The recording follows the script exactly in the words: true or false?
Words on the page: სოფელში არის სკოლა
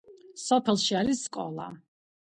true